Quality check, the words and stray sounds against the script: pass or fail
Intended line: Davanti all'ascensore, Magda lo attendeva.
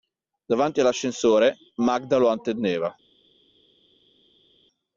pass